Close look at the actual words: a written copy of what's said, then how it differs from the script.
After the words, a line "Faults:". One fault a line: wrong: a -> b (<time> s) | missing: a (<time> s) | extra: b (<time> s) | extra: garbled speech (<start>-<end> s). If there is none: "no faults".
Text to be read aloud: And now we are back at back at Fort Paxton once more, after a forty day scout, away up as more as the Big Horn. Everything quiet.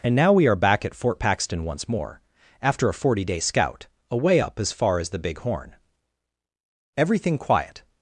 And now we are back at Fort Paxton once more, after a forty day scout, away up as far as the Big Horn. Everything quiet.
Faults:
missing: back at (0.9 s)
wrong: more -> far (4.7 s)